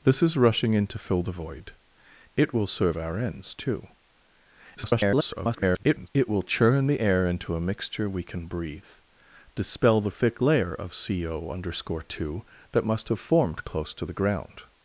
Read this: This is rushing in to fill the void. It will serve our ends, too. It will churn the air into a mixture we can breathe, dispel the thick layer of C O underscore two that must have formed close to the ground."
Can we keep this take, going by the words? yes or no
no